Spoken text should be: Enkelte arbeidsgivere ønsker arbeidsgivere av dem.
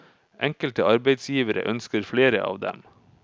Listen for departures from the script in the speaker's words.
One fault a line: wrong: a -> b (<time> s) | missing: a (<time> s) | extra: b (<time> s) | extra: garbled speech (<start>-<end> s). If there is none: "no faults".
wrong: arbeidsgivere -> flere (2.1 s)